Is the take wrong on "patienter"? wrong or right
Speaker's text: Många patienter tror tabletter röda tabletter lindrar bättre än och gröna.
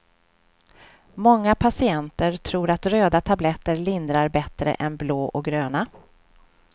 right